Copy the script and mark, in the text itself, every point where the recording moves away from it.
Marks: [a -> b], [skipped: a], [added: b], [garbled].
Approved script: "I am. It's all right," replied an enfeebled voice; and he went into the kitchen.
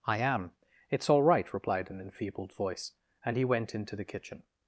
"I am. It's all right," replied an enfeebled voice; and he went into the kitchen.